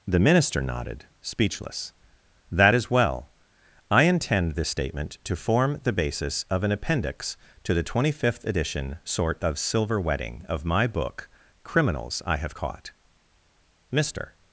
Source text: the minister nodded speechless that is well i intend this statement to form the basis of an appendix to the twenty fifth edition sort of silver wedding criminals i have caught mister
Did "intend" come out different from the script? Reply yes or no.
no